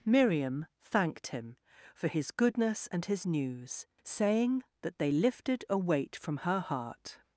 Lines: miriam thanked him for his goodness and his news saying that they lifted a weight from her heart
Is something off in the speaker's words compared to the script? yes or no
no